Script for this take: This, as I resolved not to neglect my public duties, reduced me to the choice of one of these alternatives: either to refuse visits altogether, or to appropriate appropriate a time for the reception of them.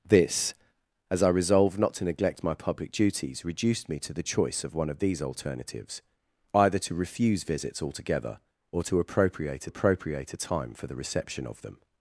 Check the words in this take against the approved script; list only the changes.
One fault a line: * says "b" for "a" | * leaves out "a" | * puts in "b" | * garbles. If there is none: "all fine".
all fine